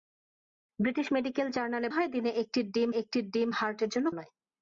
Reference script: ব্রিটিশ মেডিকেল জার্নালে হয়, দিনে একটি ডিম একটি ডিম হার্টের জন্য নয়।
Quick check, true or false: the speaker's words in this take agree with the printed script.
true